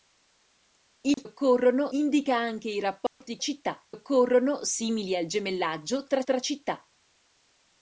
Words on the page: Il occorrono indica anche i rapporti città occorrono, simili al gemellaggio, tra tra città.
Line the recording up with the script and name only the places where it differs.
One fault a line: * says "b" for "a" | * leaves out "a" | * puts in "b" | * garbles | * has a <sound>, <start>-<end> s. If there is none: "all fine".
* has a dropout, 1.1-1.2 s
* has a dropout, 3.1-3.2 s